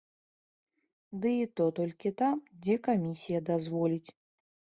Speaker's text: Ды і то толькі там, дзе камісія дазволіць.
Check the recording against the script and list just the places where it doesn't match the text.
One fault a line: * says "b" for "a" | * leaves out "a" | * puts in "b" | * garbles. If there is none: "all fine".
all fine